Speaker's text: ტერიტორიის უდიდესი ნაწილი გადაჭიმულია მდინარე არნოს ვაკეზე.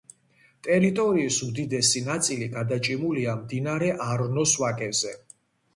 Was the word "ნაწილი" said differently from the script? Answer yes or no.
no